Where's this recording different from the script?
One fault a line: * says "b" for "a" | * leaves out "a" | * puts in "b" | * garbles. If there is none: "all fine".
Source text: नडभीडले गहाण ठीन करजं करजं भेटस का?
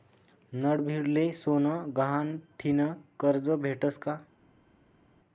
* puts in "सोनं"
* leaves out "करजं"